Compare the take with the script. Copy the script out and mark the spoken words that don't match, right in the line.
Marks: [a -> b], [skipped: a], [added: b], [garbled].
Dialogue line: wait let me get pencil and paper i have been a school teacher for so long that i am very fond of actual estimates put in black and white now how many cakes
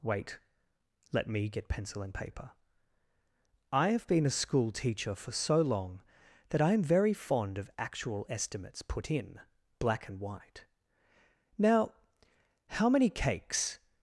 wait let me get pencil and paper i have been a school teacher for so long that i am very fond of actual estimates put in black and white now how many cakes